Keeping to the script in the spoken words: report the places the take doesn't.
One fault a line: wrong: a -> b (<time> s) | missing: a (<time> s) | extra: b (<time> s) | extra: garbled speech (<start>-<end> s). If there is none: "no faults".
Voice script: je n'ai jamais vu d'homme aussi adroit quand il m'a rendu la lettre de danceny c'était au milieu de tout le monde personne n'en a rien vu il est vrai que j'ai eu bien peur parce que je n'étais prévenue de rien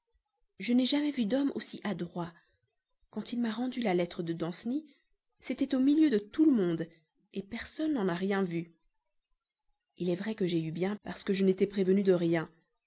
missing: peur (10.9 s)